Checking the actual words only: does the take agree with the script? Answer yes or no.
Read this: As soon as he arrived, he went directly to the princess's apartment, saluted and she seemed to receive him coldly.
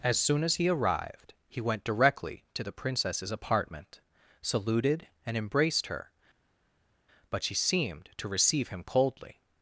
no